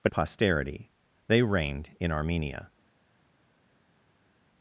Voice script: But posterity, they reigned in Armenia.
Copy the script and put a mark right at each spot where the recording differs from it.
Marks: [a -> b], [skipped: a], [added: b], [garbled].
But posterity, they reigned in Armenia.